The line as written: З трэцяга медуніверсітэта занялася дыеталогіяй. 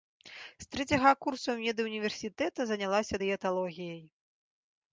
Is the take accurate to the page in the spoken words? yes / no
no